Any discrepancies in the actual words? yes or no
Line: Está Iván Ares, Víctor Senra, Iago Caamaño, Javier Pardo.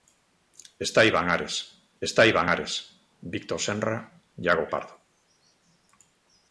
yes